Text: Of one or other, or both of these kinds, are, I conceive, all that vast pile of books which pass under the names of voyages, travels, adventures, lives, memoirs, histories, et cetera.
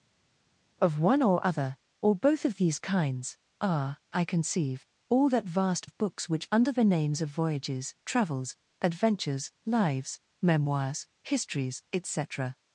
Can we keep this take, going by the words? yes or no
no